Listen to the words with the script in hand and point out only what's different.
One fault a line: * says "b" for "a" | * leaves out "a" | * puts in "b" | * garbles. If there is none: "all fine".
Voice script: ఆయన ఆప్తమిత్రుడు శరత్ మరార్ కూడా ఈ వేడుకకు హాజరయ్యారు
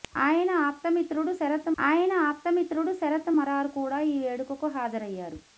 * puts in "ఆయన ఆప్తమిత్రుడు శరత్"